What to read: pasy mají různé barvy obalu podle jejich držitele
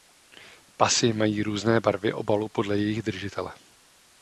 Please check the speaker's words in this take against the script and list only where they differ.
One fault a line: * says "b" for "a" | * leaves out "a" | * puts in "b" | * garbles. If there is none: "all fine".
all fine